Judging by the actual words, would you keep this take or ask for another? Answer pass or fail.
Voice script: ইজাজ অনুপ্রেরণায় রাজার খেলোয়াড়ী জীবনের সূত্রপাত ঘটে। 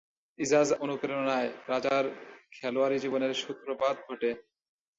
pass